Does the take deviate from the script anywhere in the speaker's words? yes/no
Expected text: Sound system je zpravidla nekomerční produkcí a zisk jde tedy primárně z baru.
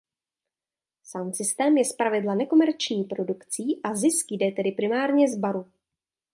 no